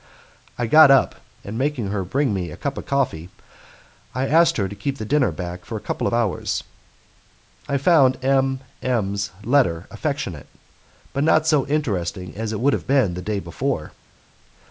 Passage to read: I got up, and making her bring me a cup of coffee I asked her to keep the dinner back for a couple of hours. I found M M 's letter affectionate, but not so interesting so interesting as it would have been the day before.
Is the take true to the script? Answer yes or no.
no